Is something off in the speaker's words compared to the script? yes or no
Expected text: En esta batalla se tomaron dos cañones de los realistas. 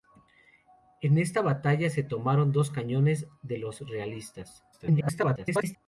yes